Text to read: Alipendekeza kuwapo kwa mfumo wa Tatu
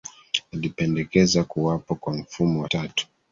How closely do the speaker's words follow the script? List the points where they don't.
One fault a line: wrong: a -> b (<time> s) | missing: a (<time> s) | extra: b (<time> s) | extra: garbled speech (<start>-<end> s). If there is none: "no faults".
no faults